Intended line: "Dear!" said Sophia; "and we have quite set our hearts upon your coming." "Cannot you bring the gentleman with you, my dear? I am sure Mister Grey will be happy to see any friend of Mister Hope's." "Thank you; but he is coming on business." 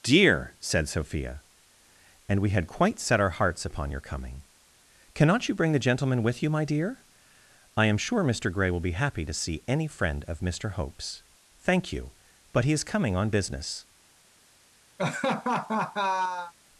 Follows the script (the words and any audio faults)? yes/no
no